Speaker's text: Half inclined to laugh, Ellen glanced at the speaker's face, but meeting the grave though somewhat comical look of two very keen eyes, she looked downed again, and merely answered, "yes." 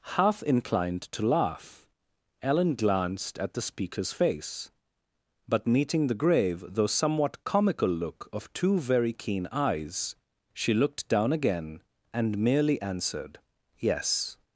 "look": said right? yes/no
yes